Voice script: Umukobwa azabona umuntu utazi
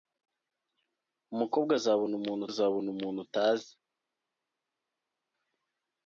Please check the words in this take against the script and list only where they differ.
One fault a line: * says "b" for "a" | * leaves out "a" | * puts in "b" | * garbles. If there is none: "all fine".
* puts in "azabona umuntu"